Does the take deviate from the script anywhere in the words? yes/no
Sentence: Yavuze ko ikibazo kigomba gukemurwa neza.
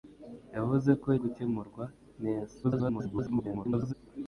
yes